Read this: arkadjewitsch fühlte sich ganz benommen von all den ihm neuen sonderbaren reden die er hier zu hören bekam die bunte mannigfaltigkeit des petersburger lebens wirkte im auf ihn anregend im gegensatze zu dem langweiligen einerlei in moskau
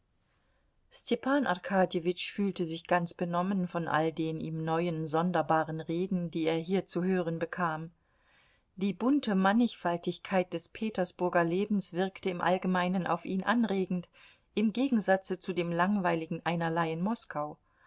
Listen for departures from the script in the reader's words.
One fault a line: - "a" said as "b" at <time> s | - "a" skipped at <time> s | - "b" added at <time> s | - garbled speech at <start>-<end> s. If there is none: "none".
- "allgemeinen" added at 12.4 s